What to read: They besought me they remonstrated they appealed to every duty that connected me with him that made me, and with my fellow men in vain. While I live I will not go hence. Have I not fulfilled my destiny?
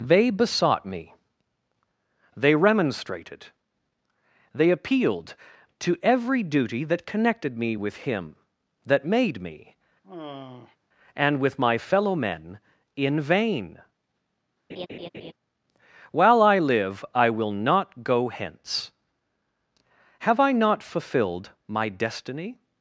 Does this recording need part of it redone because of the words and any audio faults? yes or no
yes